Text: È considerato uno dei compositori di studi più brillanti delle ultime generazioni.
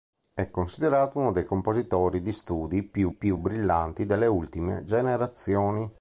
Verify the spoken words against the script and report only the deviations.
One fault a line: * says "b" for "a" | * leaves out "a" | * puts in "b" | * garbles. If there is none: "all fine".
* puts in "più"